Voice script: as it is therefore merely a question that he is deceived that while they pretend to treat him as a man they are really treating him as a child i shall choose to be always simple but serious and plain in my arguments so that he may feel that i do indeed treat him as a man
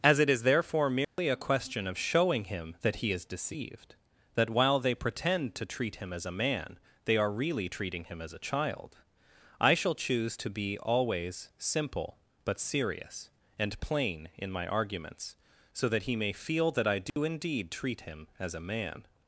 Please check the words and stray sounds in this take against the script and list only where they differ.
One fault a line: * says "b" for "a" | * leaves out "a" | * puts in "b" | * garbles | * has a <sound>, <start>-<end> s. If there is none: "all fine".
* has a dropout, 1.0-1.2 s
* puts in "of showing him"
* has a dropout, 17.1-17.2 s